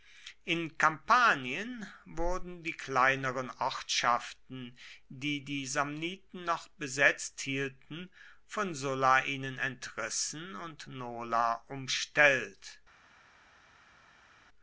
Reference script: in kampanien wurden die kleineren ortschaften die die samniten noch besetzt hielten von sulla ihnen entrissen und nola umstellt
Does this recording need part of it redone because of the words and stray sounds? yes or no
no